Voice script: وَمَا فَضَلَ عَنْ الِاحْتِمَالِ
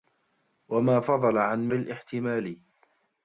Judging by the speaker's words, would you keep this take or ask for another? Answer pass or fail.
pass